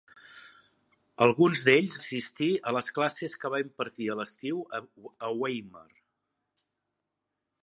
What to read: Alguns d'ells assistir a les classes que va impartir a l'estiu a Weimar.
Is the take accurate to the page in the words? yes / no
yes